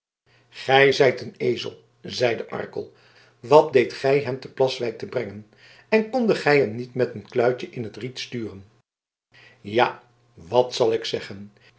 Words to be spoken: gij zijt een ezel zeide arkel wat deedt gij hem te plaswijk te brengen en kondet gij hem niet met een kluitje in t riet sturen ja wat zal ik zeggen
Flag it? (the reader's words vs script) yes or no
no